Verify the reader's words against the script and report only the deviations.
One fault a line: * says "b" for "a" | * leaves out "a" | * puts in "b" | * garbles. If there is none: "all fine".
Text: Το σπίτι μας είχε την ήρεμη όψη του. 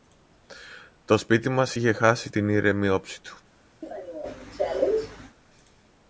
* puts in "χάσει"